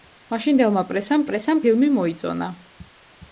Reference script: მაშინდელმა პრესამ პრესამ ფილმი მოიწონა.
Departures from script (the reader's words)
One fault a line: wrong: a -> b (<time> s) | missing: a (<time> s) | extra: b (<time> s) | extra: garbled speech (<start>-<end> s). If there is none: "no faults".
no faults